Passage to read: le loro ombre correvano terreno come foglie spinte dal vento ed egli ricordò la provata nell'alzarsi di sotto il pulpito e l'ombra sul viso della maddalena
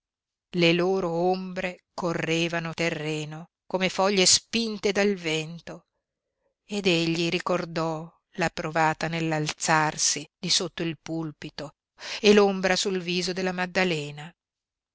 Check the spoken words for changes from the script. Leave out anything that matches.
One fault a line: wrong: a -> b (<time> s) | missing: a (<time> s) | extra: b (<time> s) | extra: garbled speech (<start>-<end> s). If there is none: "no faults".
no faults